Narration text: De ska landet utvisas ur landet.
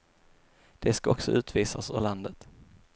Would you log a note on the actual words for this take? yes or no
yes